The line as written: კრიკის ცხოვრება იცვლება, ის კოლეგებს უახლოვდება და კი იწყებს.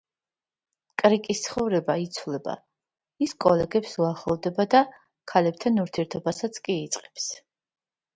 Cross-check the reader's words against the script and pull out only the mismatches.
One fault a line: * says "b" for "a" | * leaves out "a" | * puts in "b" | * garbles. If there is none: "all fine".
* puts in "ქალებთან ურთიერთობასაც"